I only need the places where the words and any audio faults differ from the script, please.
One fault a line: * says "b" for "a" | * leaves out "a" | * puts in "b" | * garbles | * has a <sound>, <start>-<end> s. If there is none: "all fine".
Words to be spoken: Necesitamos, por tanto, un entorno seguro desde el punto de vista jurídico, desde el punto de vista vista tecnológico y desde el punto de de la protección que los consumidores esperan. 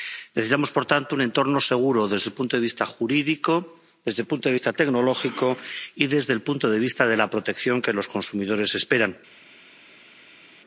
* leaves out "vista"
* puts in "vista"